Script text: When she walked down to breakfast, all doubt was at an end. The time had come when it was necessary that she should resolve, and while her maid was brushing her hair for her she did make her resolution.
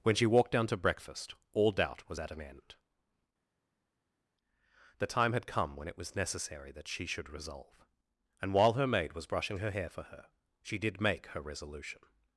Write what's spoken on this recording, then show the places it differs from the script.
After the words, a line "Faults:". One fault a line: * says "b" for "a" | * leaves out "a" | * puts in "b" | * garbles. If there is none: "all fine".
When she walked down to breakfast, all doubt was at an end. The time had come when it was necessary that she should resolve, and while her maid was brushing her hair for her she did make her resolution.
Faults:
all fine